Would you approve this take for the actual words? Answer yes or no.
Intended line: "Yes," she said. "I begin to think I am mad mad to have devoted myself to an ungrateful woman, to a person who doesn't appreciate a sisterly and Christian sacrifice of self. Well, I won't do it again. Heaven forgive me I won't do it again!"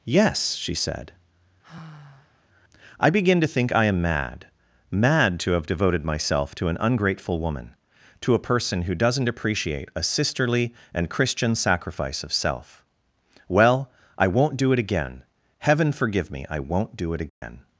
yes